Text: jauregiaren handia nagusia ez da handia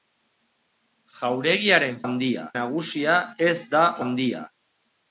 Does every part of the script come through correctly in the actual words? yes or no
yes